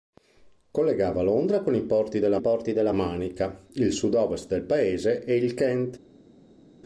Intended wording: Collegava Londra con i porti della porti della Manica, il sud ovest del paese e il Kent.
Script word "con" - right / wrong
right